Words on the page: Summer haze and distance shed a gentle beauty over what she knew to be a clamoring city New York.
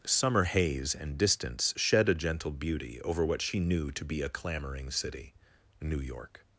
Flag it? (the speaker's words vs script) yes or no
no